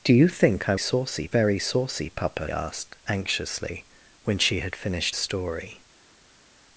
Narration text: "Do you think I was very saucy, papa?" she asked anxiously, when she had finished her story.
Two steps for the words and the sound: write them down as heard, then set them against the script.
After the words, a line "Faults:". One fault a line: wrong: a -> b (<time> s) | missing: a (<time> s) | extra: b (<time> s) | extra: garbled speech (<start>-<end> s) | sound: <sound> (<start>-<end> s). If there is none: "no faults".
"Do you think I saucy very saucy, papa?" asked anxiously, when she had finished story.
Faults:
wrong: was -> saucy (0.8 s)
missing: she (2.5 s)
missing: her (5.2 s)